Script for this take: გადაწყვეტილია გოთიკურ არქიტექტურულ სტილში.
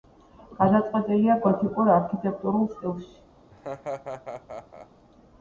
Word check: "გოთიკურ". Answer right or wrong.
right